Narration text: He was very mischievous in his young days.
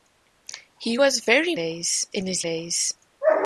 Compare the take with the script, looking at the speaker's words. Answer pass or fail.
fail